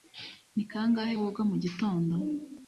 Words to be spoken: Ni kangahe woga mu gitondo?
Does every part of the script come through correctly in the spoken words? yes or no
yes